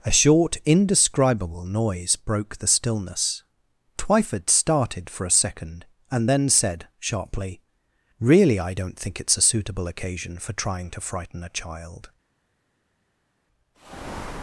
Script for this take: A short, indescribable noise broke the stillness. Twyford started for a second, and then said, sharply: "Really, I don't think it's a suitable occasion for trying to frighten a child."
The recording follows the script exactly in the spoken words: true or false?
true